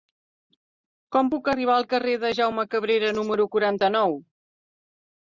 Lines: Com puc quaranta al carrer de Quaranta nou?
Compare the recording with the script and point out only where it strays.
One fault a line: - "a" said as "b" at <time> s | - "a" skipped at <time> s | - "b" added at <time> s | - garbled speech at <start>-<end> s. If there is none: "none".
- "quaranta" said as "arribar" at 1.5 s
- "Jaume Cabrera número" added at 2.4 s